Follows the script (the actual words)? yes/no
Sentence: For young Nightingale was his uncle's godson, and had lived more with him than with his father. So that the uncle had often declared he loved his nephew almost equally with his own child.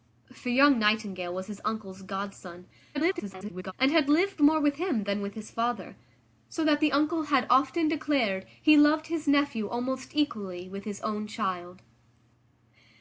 no